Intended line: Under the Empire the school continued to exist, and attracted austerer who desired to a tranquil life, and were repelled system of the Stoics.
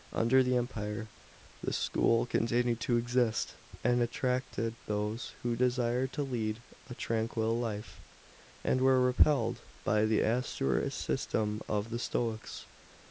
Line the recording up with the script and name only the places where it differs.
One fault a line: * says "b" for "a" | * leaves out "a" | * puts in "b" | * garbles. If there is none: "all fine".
* says "those" for "austerer"
* puts in "lead"
* puts in "by the austerer"